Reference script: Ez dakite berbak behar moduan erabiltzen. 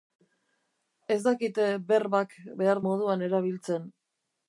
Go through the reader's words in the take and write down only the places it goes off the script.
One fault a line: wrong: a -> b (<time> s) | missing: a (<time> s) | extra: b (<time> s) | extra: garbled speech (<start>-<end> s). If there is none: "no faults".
no faults